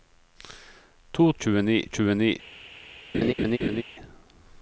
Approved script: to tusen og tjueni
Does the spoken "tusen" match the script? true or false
false